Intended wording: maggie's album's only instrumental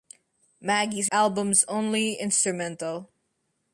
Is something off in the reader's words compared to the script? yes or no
no